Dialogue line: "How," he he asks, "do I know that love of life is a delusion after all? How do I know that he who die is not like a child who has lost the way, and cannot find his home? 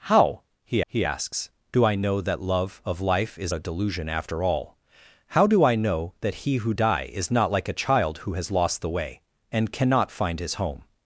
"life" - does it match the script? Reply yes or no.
yes